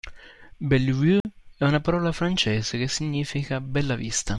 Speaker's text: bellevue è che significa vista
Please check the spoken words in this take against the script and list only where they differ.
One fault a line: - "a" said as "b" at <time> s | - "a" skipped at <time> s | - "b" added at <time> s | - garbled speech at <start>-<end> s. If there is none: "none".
- "una parola francese" added at 1.6 s
- "bella" added at 3.6 s